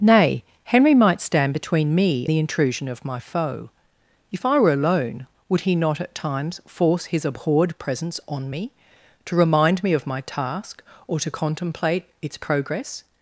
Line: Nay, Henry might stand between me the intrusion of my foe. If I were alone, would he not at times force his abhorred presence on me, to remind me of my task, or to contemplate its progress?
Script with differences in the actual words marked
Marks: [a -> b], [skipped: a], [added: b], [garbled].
Nay, Henry might stand between me the intrusion of my foe. If I were alone, would he not at times force his abhorred presence on me, to remind me of my task, or to contemplate its progress?